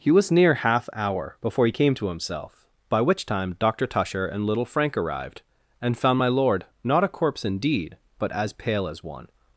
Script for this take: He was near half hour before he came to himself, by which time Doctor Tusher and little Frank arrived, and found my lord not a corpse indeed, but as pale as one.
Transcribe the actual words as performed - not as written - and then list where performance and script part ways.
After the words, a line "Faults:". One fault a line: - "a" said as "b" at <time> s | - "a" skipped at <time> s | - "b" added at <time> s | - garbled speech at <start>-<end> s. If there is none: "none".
He was near half hour before he came to himself, by which time Doctor Tusher and little Frank arrived, and found my lord not a corpse indeed, but as pale as one.
Faults:
none